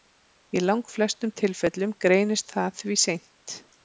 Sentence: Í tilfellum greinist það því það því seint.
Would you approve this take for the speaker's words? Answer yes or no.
no